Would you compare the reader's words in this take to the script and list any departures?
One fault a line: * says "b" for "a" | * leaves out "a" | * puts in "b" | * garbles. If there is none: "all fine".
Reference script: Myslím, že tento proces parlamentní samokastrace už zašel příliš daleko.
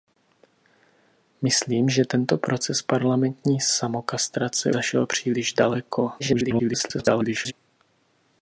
* leaves out "už"
* garbles